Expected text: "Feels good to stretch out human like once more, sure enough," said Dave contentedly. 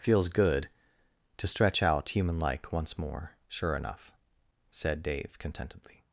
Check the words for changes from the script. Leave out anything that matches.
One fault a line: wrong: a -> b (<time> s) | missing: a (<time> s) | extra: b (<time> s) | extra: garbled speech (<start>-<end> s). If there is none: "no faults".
no faults